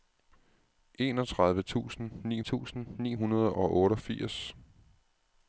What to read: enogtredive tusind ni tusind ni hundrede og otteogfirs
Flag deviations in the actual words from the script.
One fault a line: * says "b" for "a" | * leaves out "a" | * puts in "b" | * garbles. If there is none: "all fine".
all fine